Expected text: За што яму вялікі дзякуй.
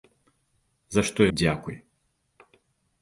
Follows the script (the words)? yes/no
no